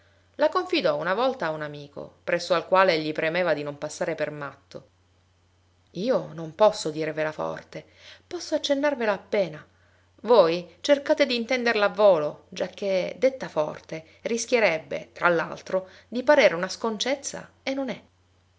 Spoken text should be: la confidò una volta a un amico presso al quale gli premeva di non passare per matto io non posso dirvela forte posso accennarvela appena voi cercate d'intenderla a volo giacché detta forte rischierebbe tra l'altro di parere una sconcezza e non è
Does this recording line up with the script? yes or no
yes